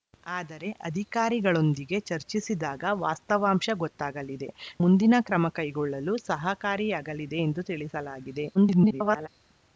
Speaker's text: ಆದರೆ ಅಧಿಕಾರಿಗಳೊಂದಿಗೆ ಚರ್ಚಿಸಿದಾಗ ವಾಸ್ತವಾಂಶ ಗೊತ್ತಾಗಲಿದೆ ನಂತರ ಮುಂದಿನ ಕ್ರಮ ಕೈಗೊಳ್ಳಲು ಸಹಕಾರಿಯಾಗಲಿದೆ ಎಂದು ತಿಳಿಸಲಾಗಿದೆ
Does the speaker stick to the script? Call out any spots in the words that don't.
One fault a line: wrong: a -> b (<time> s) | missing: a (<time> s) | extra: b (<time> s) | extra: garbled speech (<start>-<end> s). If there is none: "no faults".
missing: ನಂತರ (4.5 s)
extra: garbled speech (8.5-9.3 s)